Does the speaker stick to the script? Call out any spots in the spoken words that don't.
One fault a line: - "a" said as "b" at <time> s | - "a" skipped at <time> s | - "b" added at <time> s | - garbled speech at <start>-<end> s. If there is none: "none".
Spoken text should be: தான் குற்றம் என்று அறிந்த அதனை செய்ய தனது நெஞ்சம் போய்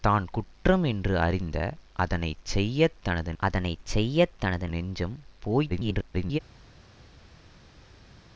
- "அதனை செய்ய தனது" added at 3.4 s
- garbled speech at 5.7-6.4 s